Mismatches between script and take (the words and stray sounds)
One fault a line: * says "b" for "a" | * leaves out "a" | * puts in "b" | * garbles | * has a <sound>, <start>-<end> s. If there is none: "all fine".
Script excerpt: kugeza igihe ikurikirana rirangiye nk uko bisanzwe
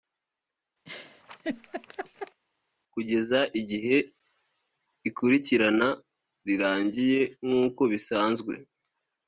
* has a laugh, 0.9-2.4 s